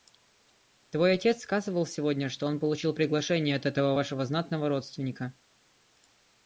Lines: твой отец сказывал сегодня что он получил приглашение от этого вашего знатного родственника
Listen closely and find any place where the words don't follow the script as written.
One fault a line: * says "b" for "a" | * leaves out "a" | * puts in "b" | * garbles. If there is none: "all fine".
all fine